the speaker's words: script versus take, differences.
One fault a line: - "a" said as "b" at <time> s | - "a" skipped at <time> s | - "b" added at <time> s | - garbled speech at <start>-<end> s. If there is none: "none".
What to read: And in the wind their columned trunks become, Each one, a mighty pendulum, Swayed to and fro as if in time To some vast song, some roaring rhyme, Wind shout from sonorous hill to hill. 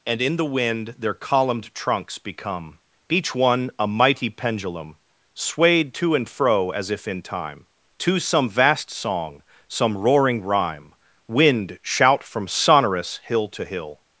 none